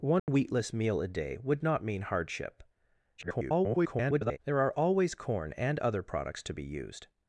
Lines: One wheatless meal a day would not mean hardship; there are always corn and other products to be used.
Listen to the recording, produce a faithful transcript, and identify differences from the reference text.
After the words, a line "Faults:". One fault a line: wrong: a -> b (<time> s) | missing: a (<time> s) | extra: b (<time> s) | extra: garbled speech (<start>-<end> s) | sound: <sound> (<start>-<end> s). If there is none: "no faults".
One wheatless meal a day would not mean hardship; [garbled] there are always corn and other products to be used.
Faults:
sound: dropout (0.2-0.3 s)
extra: garbled speech (3.2-4.4 s)